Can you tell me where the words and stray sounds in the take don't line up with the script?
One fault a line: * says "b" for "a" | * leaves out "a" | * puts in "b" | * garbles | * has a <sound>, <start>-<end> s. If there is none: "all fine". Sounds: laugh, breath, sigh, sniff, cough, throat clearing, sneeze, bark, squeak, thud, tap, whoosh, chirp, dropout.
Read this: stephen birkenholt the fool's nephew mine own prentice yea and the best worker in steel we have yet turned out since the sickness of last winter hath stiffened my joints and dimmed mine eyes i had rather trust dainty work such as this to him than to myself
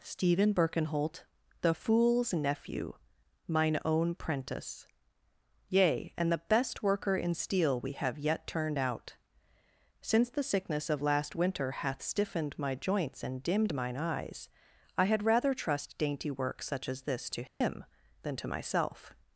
* has a dropout, 17.5-17.6 s